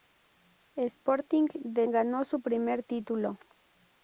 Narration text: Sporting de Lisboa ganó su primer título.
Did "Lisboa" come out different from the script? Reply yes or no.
yes